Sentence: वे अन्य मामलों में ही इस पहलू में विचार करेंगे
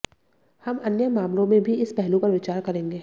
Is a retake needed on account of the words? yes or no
yes